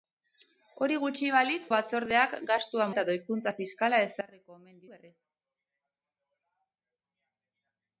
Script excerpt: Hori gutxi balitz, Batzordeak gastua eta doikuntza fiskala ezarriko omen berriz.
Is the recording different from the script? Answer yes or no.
no